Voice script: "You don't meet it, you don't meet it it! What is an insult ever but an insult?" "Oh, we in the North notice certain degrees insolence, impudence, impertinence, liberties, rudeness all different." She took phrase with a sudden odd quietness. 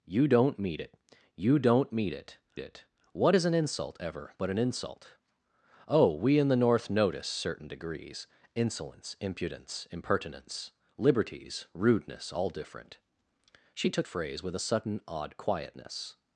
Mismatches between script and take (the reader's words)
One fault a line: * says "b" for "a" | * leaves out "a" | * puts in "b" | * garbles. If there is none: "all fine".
all fine